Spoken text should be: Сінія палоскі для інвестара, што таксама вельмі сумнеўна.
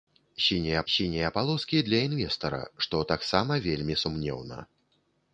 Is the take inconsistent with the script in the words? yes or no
yes